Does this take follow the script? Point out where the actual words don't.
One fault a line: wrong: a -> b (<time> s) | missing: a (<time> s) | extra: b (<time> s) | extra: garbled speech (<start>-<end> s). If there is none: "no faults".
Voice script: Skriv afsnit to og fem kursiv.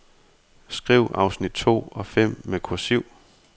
extra: med (2.4 s)